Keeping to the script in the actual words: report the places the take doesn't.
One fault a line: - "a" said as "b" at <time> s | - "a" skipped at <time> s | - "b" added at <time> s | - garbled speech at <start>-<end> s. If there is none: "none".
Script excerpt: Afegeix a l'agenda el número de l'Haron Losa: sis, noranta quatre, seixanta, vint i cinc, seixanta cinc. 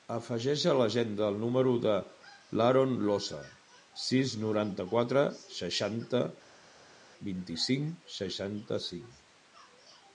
none